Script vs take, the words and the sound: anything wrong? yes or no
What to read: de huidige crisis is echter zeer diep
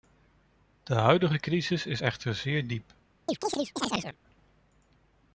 yes